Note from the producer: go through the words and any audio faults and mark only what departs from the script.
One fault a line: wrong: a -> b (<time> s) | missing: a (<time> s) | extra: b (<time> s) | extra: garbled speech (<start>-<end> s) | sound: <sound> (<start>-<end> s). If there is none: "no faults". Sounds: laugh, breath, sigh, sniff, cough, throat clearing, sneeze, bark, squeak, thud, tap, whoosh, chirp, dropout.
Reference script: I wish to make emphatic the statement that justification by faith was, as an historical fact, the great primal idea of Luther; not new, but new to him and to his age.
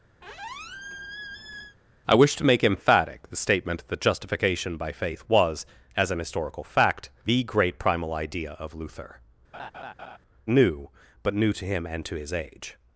sound: squeak (0.2-1.8 s)
missing: not (9.2 s)
sound: laugh (9.5-10.2 s)